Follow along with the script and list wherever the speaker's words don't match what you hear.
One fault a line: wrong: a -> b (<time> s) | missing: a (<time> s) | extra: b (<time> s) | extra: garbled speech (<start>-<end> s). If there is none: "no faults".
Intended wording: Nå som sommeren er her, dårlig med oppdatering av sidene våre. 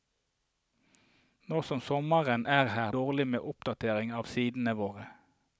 no faults